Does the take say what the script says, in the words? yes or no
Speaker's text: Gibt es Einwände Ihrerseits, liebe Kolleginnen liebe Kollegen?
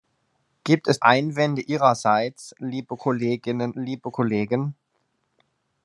yes